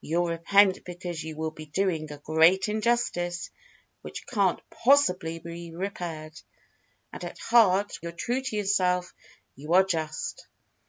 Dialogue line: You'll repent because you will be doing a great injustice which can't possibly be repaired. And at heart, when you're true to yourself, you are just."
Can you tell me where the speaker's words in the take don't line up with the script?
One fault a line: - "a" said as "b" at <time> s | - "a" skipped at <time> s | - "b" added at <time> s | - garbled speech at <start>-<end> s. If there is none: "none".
- "when" skipped at 8.0 s